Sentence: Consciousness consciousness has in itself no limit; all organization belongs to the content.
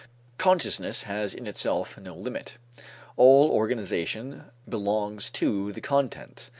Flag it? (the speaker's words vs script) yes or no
yes